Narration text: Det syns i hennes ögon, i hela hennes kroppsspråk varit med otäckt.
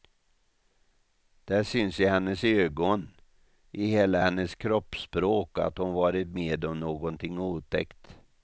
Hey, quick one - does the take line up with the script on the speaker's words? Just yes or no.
no